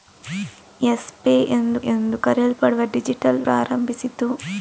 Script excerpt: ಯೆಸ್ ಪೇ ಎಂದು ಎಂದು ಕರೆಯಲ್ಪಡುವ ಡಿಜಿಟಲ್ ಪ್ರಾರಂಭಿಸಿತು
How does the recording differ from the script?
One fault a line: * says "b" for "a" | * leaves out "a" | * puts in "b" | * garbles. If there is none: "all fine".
all fine